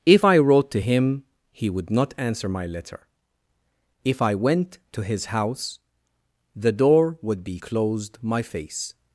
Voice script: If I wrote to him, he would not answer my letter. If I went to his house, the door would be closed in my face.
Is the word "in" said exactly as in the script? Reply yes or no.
no